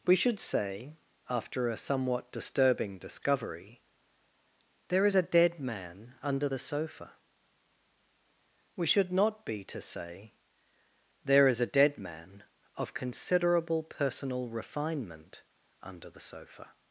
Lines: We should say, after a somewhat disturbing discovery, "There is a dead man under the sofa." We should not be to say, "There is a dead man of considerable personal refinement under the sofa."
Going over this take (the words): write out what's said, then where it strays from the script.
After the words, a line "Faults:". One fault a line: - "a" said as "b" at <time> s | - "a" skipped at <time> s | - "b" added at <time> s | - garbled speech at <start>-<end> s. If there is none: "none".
We should say, after a somewhat disturbing discovery, "There is a dead man under the sofa." We should not be to say, "There is a dead man of considerable personal refinement under the sofa."
Faults:
none